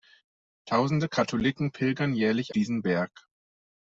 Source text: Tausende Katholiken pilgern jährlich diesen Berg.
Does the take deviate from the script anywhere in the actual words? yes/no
no